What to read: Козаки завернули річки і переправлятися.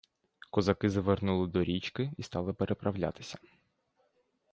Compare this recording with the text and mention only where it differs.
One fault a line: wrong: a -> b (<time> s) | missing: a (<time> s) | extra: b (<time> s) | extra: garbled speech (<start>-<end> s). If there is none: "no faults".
extra: до (1.5 s)
extra: стали (2.2 s)